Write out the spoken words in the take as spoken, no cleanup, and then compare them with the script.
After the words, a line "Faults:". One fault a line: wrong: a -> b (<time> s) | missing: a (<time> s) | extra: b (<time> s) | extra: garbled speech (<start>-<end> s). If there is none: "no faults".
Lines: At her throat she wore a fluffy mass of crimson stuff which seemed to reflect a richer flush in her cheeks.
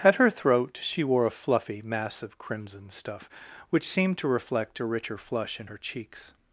At her throat she wore a fluffy mass of crimson stuff which seemed to reflect a richer flush in her cheeks.
Faults:
no faults